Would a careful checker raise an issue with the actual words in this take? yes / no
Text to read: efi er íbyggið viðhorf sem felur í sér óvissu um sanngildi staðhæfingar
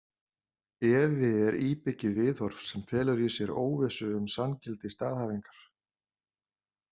no